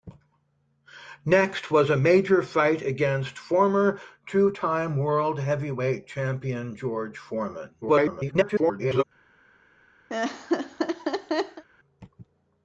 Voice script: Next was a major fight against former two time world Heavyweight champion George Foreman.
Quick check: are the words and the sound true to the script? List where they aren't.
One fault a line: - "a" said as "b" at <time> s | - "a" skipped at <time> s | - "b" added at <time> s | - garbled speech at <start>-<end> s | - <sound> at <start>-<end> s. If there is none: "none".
- garbled speech at 7.8-9.0 s
- laugh at 10.1-11.6 s